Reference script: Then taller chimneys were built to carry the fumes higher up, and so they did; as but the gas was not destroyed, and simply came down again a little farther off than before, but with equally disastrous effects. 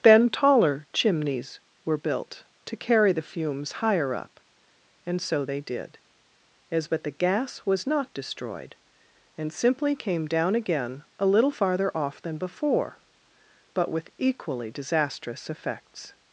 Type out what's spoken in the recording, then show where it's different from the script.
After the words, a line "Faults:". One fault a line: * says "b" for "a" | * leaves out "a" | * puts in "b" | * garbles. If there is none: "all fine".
Then taller chimneys were built to carry the fumes higher up, and so they did; as but the gas was not destroyed, and simply came down again a little farther off than before, but with equally disastrous effects.
Faults:
all fine